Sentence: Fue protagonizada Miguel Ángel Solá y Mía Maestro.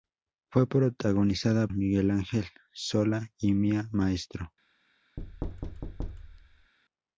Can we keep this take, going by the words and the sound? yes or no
no